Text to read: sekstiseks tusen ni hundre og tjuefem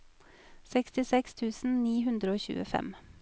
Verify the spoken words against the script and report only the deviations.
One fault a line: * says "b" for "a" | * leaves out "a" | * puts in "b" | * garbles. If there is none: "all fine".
all fine